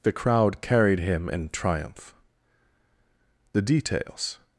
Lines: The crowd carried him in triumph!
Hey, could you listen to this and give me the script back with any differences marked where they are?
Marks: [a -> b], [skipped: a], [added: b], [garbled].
The crowd carried him in triumph! [added: The details]